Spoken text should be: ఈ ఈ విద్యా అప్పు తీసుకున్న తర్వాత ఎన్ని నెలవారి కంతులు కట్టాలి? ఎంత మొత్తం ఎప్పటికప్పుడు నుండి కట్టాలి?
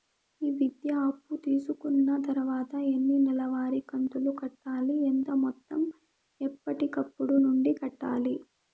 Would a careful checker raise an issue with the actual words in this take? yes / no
yes